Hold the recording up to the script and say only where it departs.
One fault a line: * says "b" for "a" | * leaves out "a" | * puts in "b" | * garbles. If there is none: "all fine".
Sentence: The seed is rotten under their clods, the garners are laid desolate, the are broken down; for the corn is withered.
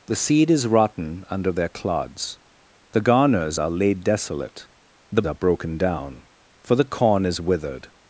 all fine